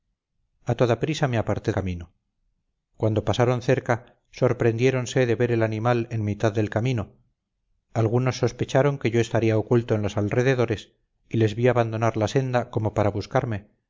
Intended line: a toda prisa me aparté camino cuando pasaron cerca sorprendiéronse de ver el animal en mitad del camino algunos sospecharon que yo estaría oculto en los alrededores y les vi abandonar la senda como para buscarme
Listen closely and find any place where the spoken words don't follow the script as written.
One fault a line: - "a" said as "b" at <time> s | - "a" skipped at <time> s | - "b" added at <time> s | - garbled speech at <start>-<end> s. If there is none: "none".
none